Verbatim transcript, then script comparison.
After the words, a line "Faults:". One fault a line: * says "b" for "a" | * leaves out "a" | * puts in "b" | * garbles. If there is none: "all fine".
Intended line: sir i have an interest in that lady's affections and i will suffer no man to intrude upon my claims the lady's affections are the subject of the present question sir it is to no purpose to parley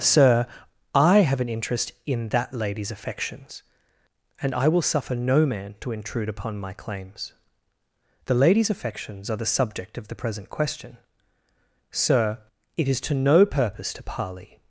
sir i have an interest in that lady's affections and i will suffer no man to intrude upon my claims the lady's affections are the subject of the present question sir it is to no purpose to parley
Faults:
all fine